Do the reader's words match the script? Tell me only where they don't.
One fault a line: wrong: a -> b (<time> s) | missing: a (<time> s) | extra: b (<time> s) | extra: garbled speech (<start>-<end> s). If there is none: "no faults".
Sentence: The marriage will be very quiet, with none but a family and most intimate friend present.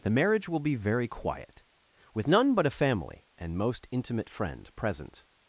no faults